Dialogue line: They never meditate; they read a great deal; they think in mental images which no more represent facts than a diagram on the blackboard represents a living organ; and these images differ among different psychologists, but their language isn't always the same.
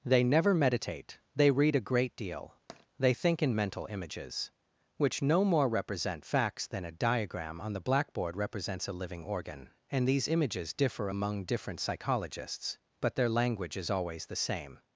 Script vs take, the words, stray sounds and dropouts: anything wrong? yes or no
yes